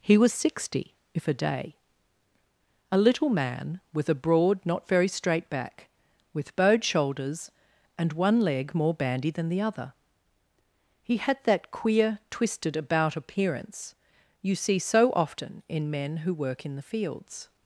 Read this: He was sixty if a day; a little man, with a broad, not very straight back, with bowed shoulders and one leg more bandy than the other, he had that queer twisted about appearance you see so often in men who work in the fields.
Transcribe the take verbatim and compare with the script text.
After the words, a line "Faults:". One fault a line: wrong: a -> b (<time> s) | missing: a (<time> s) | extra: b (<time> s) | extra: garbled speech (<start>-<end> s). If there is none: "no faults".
He was sixty if a day; a little man, with a broad, not very straight back, with bowed shoulders and one leg more bandy than the other, he had that queer twisted about appearance you see so often in men who work in the fields.
Faults:
no faults